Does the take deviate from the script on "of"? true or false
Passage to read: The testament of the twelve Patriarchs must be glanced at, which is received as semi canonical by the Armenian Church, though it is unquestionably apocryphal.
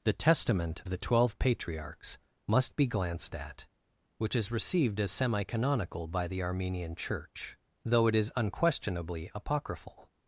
true